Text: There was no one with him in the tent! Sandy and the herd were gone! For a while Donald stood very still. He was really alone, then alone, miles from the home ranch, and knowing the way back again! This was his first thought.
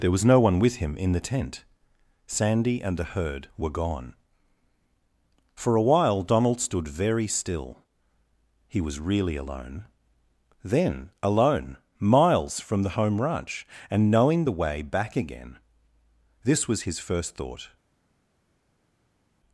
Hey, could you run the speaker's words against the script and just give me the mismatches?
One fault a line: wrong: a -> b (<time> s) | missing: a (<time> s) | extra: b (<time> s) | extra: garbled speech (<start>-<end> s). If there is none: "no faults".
no faults